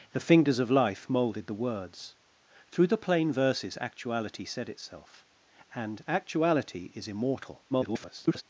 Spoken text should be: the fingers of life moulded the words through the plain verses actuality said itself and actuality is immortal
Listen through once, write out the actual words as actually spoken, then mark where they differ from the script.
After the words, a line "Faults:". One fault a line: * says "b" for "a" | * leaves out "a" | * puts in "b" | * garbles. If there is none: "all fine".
the fingers of life moulded the words through the plain verses actuality said itself and actuality is immortal [garbled]
Faults:
* garbles